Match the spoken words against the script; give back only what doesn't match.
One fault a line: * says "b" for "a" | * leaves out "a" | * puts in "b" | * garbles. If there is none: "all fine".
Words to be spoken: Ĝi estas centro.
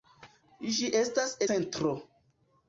all fine